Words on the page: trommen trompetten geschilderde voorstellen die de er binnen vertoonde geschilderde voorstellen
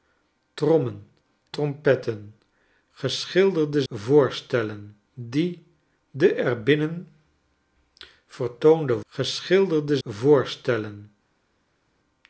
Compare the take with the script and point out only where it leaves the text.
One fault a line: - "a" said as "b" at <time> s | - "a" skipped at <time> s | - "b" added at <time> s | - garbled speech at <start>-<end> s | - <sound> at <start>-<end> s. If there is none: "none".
none